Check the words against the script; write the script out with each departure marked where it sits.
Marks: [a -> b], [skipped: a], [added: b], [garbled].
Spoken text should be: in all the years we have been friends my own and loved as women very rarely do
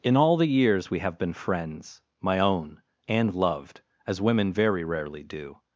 in all the years we have been friends my own and loved as women very rarely do